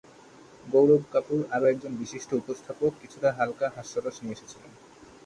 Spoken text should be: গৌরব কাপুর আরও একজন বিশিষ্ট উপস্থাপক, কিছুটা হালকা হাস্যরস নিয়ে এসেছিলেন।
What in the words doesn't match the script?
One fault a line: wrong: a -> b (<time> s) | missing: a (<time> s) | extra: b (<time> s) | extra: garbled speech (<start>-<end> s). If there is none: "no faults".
no faults